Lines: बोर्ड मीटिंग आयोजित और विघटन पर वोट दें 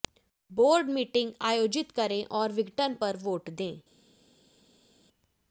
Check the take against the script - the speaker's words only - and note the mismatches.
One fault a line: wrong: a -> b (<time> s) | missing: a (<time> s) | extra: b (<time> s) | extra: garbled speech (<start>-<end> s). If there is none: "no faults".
extra: करें (1.9 s)